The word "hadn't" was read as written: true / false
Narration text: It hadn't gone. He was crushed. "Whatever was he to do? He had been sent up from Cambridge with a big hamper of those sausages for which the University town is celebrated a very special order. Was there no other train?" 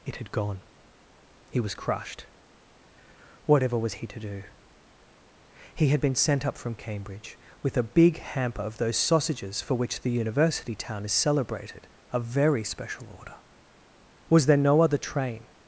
false